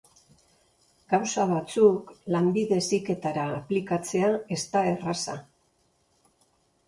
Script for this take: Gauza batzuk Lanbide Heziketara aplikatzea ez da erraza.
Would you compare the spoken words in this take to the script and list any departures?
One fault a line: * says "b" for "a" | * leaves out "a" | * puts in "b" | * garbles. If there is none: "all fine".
all fine